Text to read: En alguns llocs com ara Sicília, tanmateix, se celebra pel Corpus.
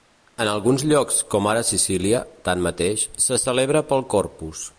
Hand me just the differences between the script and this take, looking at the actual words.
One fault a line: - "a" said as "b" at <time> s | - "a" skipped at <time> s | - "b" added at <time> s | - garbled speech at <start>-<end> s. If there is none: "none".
none